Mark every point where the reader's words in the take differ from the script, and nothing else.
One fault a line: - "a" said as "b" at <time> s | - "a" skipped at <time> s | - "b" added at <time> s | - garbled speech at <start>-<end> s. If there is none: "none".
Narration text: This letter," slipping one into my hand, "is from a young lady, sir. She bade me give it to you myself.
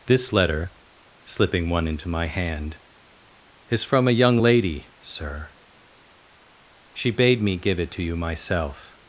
none